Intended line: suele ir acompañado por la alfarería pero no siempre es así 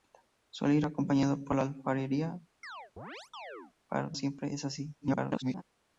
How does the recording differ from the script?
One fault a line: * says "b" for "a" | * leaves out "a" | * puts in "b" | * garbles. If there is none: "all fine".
* leaves out "no"
* garbles